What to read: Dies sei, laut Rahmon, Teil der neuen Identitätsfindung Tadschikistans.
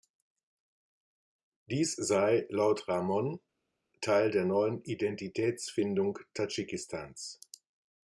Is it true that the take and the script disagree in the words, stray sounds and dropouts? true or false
false